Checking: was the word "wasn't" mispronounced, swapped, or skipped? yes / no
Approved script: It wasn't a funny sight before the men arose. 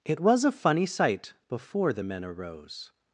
yes